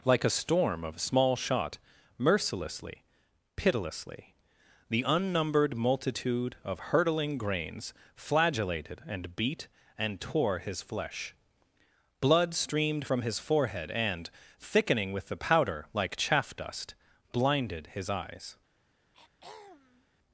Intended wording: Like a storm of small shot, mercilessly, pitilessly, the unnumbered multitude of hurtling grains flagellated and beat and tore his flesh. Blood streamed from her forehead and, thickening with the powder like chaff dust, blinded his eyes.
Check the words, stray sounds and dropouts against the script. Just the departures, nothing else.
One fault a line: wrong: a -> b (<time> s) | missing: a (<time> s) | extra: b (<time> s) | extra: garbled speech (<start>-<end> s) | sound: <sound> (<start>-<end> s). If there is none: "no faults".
wrong: her -> his (13.2 s)
sound: throat clearing (19.1-20.1 s)